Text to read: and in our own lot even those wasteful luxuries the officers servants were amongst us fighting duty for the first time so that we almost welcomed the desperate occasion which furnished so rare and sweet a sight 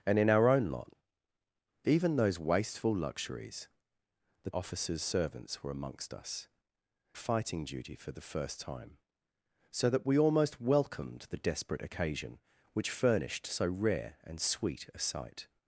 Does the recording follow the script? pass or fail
pass